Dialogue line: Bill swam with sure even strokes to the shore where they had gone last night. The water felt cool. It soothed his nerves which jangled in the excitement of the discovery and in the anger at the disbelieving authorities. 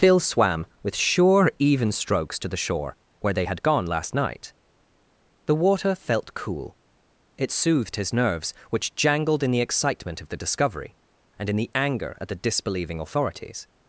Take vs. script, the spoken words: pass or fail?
fail